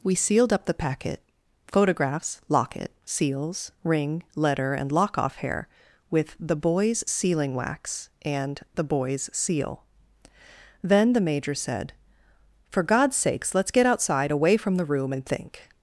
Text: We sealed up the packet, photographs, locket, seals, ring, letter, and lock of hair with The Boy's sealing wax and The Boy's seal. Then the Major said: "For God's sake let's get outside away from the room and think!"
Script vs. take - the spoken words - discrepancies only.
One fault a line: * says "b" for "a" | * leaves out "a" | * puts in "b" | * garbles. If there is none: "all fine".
* says "off" for "of"
* says "sakes" for "sake"